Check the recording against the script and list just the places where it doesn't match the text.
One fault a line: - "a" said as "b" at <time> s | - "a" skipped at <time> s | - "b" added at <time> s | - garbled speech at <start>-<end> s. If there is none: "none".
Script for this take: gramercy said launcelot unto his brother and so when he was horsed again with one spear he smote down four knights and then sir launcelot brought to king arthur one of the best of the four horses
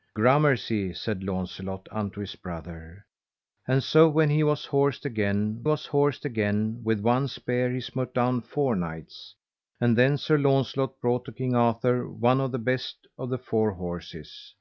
- "was horsed again" added at 5.6 s